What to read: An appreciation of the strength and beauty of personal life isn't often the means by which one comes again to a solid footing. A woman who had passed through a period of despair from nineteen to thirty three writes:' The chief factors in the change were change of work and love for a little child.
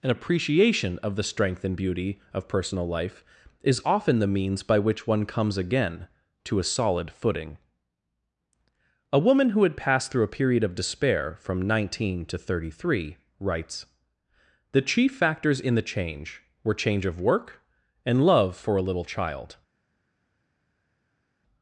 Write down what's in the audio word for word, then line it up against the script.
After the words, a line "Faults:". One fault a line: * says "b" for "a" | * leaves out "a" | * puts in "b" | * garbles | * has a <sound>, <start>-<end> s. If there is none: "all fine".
An appreciation of the strength and beauty of personal life is often the means by which one comes again to a solid footing. A woman who had passed through a period of despair from nineteen to thirty three writes:' The chief factors in the change were change of work and love for a little child.
Faults:
* says "is" for "isn't"